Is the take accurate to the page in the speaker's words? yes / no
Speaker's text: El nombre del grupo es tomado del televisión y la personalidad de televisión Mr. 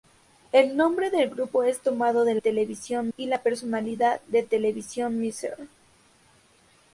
yes